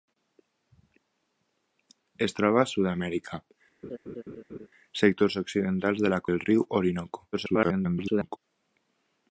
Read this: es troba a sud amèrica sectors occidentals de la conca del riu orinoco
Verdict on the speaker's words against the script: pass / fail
fail